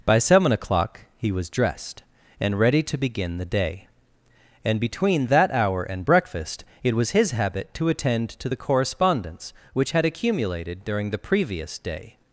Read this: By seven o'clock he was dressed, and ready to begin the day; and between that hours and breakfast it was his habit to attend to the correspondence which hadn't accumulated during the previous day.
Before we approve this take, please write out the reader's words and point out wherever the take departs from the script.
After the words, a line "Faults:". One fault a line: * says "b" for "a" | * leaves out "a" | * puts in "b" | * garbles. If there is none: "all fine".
By seven o'clock he was dressed, and ready to begin the day; and between that hour and breakfast it was his habit to attend to the correspondence which had accumulated during the previous day.
Faults:
* says "hour" for "hours"
* says "had" for "hadn't"